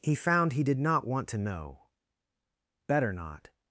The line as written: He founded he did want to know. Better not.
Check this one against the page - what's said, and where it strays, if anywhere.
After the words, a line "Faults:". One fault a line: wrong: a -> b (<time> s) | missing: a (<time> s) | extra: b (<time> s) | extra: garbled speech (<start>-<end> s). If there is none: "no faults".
He found he did not want to know. Better not.
Faults:
wrong: founded -> found (0.1 s)
extra: not (0.8 s)